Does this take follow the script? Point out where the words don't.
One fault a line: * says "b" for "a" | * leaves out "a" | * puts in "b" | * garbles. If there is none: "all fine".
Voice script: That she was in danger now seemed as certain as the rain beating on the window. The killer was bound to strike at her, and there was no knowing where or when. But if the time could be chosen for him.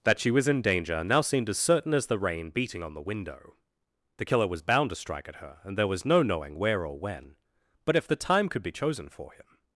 all fine